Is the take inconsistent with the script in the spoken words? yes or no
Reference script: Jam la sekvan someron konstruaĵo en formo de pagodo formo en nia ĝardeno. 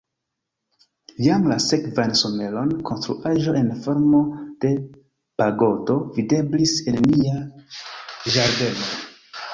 yes